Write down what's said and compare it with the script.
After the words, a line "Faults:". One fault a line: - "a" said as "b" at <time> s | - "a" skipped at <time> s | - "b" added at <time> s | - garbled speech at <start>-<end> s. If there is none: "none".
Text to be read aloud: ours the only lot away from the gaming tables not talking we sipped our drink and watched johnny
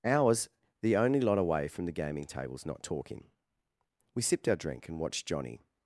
ours the only lot away from the gaming tables not talking we sipped our drink and watched johnny
Faults:
none